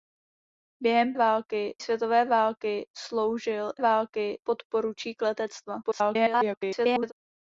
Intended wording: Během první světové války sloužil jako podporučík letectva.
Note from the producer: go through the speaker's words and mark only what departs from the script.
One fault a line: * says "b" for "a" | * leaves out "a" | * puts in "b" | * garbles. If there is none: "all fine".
* says "války" for "první"
* says "války" for "jako"
* garbles